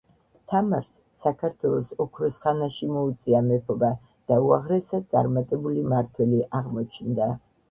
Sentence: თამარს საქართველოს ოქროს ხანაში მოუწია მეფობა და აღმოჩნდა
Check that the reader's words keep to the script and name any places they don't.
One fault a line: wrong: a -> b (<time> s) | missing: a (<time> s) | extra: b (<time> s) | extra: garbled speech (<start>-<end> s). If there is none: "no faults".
extra: უაღრესად წარმატებული მმართველი (4.5 s)